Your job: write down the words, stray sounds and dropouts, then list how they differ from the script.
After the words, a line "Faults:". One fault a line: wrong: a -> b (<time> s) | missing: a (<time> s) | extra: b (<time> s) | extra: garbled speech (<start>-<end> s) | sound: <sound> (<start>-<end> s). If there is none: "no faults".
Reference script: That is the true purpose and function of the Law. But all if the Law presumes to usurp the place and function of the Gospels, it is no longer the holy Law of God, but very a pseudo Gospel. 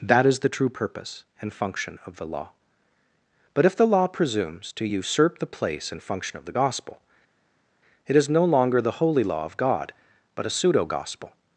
That is the true purpose and function of the Law. But if the Law presumes to usurp the place and function of the Gospel, it is no longer the holy Law of God, but a pseudo Gospel.
Faults:
missing: all (3.6 s)
wrong: Gospels -> Gospel (6.5 s)
missing: very (10.4 s)